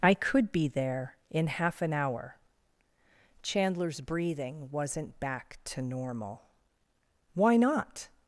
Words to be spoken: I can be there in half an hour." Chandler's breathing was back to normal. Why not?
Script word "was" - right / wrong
wrong